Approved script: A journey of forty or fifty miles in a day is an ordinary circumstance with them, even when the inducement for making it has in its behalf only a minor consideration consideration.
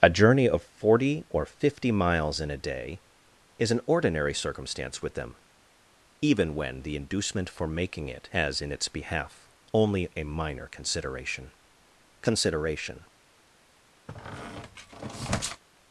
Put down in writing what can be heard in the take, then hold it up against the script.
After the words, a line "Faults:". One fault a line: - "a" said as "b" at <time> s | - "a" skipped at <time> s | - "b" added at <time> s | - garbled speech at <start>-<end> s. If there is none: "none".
A journey of forty or fifty miles in a day is an ordinary circumstance with them, even when the inducement for making it has in its behalf only a minor consideration consideration.
Faults:
none